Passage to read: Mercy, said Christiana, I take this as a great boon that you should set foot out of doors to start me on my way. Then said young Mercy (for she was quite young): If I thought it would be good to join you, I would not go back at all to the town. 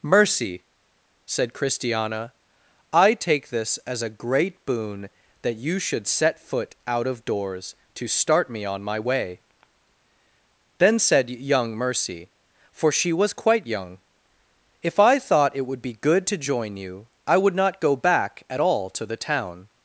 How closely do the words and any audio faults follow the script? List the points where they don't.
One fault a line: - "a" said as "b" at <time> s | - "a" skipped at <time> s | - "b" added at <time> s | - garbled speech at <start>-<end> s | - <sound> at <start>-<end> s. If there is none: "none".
none